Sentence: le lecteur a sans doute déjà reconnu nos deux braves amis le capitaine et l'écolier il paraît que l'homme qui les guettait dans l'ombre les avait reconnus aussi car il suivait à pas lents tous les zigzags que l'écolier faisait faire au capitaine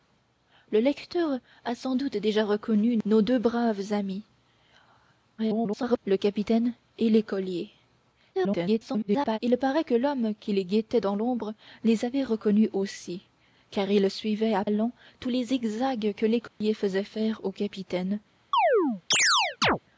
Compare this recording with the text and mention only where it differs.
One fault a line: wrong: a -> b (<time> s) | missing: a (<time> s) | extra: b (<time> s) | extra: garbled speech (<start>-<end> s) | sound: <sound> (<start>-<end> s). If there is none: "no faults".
extra: garbled speech (5.4-6.0 s)
extra: garbled speech (8.3-9.4 s)
missing: pas (14.6 s)
sound: dropout (16.5-16.6 s)
sound: chirp (18.5-19.8 s)